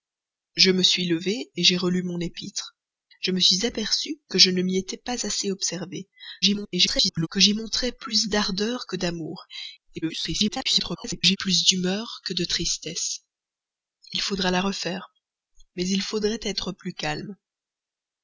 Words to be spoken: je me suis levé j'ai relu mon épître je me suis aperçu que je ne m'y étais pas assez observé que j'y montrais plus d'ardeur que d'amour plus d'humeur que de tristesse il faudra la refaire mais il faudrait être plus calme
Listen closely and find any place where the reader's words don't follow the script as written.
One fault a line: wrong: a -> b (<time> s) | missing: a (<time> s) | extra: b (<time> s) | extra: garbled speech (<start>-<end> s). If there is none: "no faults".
extra: garbled speech (6.4-7.3 s)
extra: garbled speech (10.0-11.4 s)